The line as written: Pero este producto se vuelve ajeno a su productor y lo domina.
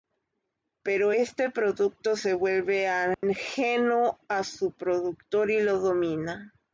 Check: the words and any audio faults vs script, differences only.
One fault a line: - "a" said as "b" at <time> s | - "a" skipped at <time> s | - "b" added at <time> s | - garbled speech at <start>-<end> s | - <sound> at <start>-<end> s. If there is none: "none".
- dropout at 3.1-3.2 s